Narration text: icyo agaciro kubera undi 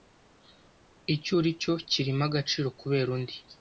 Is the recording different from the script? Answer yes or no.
yes